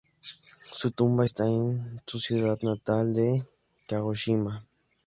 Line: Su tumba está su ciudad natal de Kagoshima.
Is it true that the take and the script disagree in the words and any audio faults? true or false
true